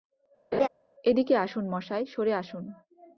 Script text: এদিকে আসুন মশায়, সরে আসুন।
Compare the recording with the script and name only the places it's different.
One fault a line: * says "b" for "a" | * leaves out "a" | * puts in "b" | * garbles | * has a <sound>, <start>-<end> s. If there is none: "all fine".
* has a laugh, 0.5-0.7 s